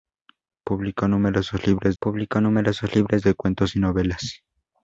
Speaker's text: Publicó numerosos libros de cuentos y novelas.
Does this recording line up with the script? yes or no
no